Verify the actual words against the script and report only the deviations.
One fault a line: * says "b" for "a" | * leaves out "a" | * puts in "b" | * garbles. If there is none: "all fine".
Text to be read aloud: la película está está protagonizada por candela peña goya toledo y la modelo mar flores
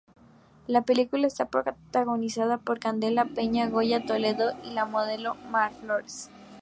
* leaves out "está"